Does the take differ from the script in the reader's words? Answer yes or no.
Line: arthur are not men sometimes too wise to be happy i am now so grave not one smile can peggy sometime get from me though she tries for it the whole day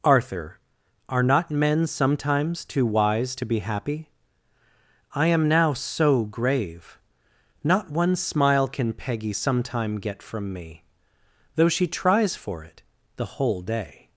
no